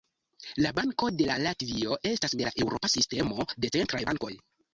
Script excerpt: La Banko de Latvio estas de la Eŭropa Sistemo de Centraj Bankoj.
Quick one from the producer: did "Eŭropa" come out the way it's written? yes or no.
yes